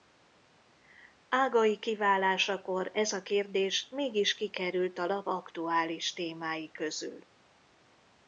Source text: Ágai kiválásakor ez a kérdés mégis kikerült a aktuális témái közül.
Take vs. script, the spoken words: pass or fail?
fail